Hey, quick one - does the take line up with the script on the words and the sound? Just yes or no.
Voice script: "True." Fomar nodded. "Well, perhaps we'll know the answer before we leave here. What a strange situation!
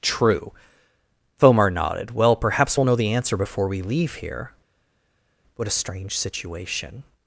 yes